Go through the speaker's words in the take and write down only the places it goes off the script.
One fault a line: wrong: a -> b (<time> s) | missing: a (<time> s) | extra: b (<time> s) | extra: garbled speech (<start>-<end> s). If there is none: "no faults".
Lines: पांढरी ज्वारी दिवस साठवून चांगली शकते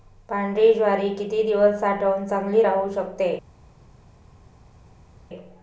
extra: किती (1.1 s)
extra: राहू (2.6 s)